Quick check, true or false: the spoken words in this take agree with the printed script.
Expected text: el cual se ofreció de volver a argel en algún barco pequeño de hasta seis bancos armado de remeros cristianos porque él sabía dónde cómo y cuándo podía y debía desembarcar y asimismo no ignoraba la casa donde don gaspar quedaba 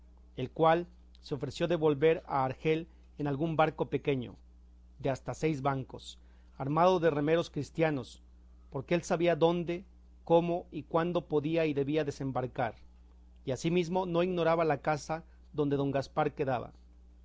true